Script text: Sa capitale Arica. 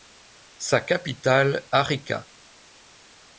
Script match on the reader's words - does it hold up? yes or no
yes